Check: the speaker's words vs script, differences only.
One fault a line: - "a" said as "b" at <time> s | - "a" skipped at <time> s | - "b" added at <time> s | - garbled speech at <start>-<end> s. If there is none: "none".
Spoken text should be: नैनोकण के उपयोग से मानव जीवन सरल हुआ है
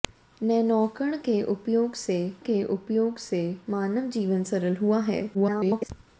- "के उपयोग से" added at 2.4 s
- garbled speech at 5.3-5.9 s